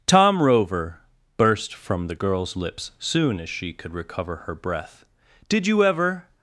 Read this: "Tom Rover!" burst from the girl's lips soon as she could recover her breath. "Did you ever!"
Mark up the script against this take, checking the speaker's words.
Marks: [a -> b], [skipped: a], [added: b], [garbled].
"Tom Rover!" burst from the girl's lips soon as she could recover her breath. "Did you ever!"